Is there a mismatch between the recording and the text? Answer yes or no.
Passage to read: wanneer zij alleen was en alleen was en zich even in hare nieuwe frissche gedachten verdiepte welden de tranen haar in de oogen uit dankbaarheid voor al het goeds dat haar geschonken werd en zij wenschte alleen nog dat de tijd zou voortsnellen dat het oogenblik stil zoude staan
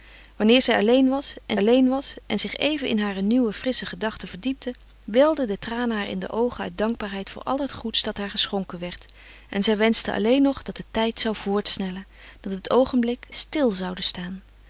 no